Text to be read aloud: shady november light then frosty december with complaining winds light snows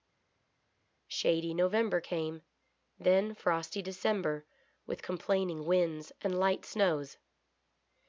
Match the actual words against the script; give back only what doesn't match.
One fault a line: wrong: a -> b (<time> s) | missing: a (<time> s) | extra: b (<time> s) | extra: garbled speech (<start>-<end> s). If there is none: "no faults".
wrong: light -> came (2.0 s)
extra: and (6.2 s)